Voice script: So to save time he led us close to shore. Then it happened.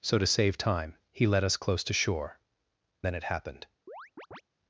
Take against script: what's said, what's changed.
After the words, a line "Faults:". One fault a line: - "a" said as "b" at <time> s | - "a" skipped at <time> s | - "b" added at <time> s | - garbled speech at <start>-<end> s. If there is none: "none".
So to save time he led us close to shore. Then it happened.
Faults:
none